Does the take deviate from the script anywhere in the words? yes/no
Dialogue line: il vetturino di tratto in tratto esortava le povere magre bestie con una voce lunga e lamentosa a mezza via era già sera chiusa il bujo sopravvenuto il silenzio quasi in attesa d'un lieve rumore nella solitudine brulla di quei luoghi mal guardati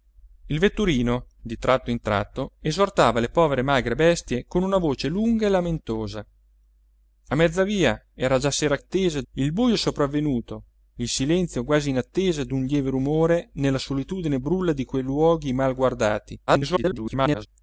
yes